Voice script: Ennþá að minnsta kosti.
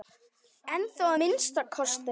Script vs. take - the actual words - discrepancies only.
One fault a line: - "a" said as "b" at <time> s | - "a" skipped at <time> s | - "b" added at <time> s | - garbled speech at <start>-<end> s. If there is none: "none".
- "að" skipped at 1.1 s